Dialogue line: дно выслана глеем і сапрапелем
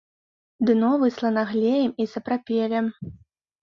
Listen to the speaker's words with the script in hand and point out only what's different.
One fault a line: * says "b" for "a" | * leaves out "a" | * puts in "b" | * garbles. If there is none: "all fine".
all fine